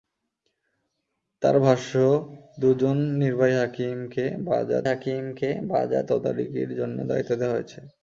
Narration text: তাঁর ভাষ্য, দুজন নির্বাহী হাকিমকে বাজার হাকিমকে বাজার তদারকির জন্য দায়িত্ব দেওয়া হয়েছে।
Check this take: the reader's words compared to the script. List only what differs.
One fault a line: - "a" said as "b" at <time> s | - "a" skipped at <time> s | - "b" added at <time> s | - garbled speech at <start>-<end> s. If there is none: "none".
none